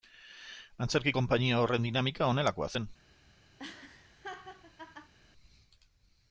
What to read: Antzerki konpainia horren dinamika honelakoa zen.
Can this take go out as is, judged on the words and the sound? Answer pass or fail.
fail